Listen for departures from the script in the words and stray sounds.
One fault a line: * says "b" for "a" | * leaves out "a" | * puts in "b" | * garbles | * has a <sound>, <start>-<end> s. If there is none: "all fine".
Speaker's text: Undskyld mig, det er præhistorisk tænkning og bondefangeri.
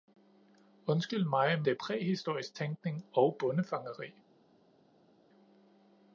all fine